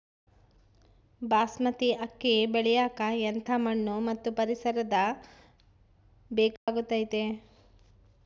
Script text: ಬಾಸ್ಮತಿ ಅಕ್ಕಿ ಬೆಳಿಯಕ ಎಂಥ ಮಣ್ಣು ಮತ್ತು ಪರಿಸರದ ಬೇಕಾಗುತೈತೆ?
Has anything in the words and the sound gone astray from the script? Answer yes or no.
yes